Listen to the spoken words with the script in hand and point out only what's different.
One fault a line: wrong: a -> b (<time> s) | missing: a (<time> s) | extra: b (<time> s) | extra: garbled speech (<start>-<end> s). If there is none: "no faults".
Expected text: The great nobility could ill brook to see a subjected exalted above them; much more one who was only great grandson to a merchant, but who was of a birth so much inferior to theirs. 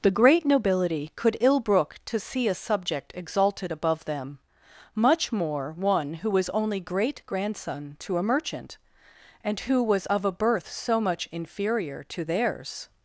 wrong: subjected -> subject (2.5 s)
wrong: but -> and (9.4 s)